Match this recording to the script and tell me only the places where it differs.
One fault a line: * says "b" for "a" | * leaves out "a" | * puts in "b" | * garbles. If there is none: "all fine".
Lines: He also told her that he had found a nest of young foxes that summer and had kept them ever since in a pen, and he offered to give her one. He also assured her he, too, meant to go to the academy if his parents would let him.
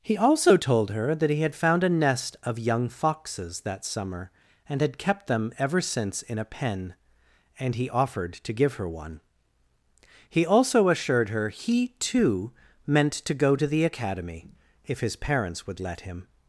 all fine